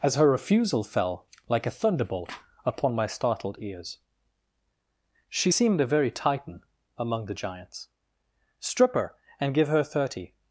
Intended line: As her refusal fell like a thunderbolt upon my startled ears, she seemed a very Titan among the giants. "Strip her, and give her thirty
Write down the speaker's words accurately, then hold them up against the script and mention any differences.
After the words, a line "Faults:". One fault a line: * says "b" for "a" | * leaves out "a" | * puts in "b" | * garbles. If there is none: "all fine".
As her refusal fell like a thunderbolt upon my startled ears, she seemed a very Titan among the giants. "Strip her, and give her thirty
Faults:
all fine